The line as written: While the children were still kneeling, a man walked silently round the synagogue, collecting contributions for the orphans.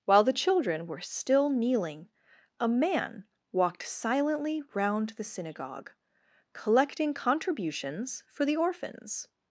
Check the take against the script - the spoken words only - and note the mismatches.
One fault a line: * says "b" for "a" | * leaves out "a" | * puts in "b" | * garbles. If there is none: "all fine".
all fine